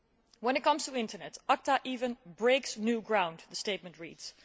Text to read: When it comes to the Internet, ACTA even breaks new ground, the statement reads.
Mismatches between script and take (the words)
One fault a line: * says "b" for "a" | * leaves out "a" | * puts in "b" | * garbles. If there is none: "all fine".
all fine